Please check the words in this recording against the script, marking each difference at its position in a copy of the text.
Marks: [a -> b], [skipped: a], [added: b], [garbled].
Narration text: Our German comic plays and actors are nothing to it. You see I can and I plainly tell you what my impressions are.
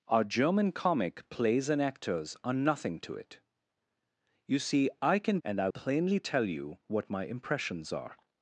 Our German comic plays and actors are nothing to it. You see I can and I plainly tell you what my impressions are.